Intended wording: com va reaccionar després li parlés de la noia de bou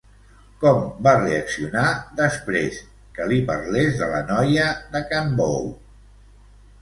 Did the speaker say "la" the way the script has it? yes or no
yes